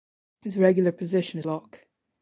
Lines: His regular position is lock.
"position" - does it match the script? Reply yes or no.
yes